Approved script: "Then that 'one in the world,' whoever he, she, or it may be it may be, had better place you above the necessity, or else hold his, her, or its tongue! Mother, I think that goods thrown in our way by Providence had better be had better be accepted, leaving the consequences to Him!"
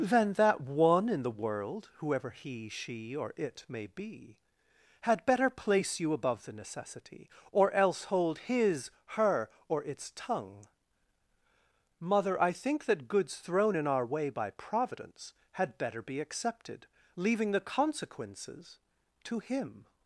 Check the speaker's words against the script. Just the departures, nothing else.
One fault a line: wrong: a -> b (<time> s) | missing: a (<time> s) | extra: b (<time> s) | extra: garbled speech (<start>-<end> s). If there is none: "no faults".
missing: it may be (4.4 s)
missing: had better be (16.2 s)